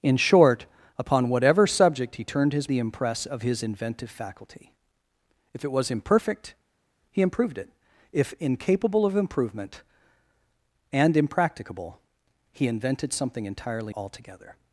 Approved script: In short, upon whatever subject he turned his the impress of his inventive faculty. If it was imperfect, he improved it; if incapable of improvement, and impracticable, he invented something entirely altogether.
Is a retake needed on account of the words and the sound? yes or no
no